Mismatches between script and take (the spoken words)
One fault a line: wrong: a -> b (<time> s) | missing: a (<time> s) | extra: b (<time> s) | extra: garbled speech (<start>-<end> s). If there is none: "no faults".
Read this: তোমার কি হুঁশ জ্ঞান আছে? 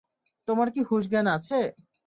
no faults